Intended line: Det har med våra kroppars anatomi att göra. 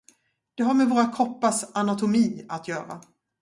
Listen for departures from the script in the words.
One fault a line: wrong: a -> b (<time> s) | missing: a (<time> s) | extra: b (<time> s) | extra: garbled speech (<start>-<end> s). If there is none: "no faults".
no faults